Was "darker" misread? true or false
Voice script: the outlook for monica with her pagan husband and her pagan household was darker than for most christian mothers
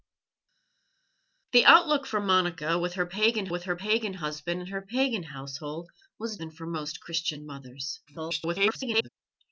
true